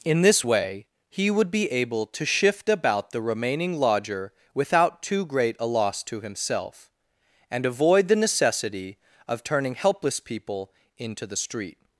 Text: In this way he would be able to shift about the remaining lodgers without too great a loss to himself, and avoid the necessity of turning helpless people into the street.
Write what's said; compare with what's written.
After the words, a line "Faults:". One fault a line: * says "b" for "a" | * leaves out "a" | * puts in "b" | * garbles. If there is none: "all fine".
In this way he would be able to shift about the remaining lodger without too great a loss to himself, and avoid the necessity of turning helpless people into the street.
Faults:
* says "lodger" for "lodgers"